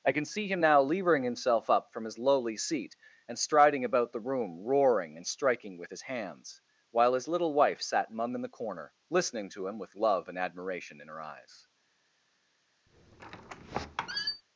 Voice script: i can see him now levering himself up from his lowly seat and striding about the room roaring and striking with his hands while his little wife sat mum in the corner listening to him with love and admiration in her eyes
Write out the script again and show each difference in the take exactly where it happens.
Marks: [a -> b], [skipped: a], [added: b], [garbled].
i can see him now levering himself up from his lowly seat and striding about the room roaring and striking with his hands while his little wife sat mum in the corner listening to him with love and admiration in her eyes